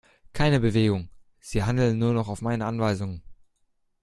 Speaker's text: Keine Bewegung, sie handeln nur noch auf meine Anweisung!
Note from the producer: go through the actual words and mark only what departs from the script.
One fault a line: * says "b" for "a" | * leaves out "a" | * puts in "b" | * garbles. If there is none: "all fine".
all fine